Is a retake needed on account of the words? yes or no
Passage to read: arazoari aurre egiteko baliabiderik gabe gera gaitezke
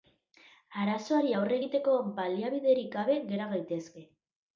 no